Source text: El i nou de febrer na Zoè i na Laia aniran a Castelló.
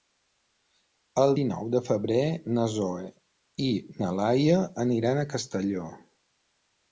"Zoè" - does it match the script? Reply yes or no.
yes